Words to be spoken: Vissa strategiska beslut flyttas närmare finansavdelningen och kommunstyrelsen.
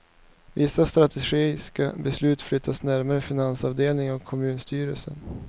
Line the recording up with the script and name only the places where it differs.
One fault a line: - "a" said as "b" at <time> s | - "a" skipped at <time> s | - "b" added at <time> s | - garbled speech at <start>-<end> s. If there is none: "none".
none